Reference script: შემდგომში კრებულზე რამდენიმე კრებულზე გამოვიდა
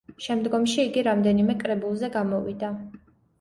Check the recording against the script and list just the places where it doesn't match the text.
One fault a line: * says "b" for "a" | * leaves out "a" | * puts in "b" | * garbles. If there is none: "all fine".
* says "იგი" for "კრებულზე"